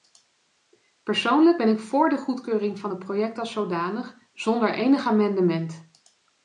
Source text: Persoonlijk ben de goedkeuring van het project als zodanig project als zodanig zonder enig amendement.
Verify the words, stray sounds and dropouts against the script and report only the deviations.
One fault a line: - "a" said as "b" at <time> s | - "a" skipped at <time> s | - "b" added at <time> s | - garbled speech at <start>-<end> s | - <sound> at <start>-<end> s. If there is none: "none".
- "ik voor" added at 1.7 s
- "project als zodanig" skipped at 4.2 s